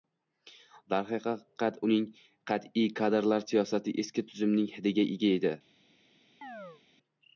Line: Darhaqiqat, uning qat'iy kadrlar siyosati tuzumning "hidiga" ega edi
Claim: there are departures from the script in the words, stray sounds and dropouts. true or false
true